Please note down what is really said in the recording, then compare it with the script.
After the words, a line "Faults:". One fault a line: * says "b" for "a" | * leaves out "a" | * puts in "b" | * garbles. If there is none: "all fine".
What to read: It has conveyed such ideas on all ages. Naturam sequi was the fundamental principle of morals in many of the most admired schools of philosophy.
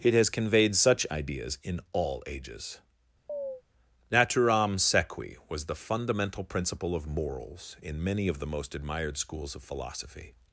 It has conveyed such ideas in all ages. Naturam sequi was the fundamental principle of morals in many of the most admired schools of philosophy.
Faults:
* says "in" for "on"